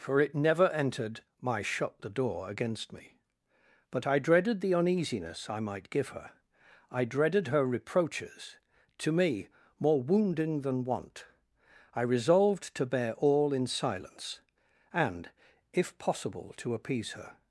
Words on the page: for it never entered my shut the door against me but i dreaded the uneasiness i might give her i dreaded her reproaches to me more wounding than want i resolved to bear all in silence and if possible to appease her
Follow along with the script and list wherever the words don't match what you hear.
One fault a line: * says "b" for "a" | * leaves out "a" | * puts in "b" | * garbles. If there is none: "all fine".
all fine